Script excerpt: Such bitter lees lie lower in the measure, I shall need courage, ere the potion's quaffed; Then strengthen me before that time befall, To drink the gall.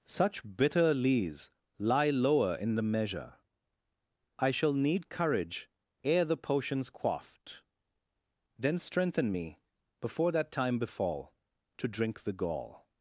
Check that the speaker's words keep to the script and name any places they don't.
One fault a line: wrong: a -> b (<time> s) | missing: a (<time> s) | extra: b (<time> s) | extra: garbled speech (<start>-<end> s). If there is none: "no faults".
no faults